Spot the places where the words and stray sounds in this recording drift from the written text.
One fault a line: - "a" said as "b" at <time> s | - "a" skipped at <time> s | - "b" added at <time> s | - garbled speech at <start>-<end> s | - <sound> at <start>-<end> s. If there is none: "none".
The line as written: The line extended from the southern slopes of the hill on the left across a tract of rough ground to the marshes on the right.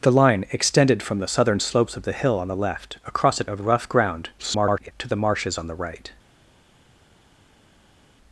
- "tract" skipped at 3.5 s
- garbled speech at 4.4-4.9 s